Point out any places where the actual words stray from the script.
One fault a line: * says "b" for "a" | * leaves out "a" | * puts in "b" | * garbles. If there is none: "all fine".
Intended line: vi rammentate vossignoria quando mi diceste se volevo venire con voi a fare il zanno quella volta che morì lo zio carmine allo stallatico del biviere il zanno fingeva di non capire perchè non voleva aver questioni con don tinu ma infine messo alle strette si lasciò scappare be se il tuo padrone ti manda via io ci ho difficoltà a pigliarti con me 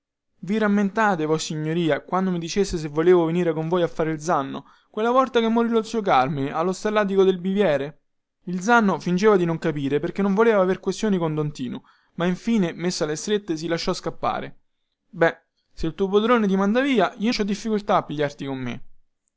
all fine